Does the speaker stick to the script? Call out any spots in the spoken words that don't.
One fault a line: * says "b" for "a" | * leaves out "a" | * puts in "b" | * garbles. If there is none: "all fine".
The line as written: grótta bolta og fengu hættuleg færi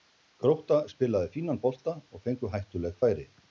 * puts in "spilaði fínan"